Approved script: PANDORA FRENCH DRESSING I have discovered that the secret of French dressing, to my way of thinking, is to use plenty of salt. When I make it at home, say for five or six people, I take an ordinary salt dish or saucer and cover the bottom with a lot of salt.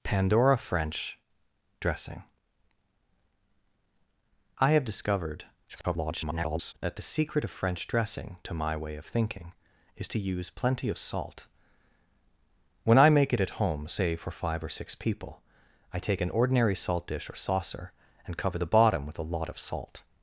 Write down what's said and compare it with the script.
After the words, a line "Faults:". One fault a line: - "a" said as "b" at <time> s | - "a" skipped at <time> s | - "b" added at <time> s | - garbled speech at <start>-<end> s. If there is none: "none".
PANDORA FRENCH DRESSING I have discovered [garbled] that the secret of French dressing, to my way of thinking, is to use plenty of salt. When I make it at home, say for five or six people, I take an ordinary salt dish or saucer and cover the bottom with a lot of salt.
Faults:
- garbled speech at 5.7-6.7 s